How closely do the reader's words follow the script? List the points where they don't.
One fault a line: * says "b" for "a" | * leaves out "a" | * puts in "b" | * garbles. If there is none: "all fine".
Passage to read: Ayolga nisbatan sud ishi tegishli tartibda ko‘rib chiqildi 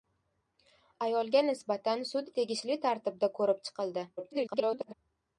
* leaves out "ishi"
* garbles